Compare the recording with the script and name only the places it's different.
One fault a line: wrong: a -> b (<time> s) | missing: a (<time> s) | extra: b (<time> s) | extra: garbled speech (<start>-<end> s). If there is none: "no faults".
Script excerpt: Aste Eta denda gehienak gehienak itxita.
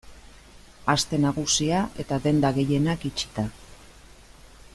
extra: Nagusia (1.2 s)
missing: gehienak (3.1 s)